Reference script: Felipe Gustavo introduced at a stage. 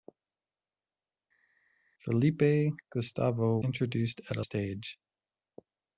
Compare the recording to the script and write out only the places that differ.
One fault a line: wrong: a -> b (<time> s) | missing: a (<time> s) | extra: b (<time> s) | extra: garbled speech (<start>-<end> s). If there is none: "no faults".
no faults